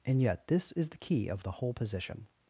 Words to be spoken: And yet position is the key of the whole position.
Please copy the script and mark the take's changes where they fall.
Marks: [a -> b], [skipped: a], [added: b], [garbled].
And yet [position -> this] is the key of the whole position.